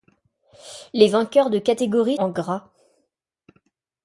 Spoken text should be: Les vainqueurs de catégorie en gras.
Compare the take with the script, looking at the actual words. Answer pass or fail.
pass